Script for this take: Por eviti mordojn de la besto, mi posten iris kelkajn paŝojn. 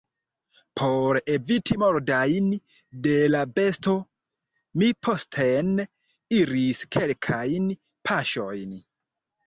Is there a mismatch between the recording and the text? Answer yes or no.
no